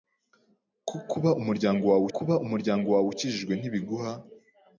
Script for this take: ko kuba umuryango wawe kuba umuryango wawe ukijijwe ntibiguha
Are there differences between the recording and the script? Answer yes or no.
no